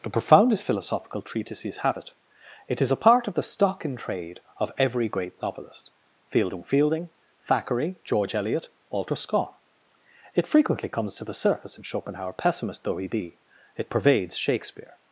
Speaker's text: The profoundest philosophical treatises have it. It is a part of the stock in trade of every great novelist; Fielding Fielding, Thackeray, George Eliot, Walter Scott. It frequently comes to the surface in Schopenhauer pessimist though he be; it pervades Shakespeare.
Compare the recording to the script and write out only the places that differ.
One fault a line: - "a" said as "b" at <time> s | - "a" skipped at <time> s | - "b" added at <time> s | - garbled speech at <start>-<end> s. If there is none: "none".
none